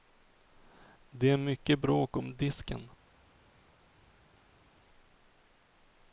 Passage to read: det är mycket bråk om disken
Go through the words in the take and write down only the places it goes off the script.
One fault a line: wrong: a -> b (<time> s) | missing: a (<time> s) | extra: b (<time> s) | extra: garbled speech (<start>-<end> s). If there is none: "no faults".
no faults